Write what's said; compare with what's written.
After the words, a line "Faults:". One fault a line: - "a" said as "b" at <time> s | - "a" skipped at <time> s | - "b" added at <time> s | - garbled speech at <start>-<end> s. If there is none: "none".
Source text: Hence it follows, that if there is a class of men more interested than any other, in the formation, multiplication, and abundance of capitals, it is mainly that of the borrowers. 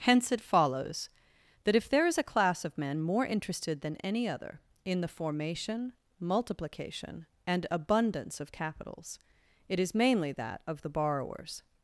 Hence it follows, that if there is a class of men more interested than any other, in the formation, multiplication, and abundance of capitals, it is mainly that of the borrowers.
Faults:
none